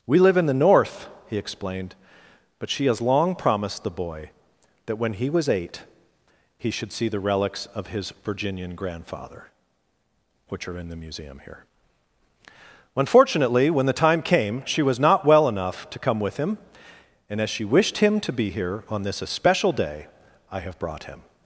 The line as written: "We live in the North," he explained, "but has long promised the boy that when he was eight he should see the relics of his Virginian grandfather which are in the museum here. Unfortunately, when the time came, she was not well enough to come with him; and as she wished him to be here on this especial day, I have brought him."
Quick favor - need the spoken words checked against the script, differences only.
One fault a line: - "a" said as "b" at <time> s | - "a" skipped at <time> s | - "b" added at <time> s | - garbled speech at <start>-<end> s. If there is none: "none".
- "she" added at 2.7 s